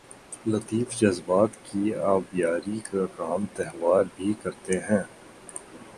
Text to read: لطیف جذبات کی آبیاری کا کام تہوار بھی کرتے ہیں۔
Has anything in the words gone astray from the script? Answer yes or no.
no